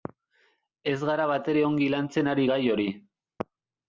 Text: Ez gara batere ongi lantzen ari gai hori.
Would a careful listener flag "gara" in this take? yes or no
no